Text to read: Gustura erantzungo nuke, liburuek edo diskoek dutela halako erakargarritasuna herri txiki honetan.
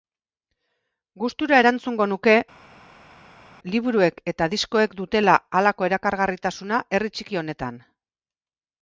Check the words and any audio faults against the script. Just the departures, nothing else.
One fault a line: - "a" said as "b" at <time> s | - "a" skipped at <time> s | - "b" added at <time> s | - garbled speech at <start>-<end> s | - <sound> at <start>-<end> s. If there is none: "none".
- "edo" said as "eta" at 4.3 s